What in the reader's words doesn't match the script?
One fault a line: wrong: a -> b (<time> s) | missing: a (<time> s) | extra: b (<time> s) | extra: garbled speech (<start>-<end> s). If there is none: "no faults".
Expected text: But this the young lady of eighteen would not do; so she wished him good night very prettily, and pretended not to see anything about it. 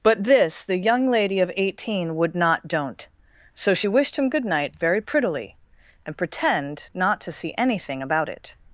wrong: do -> don't (2.7 s)
wrong: pretended -> pretend (6.2 s)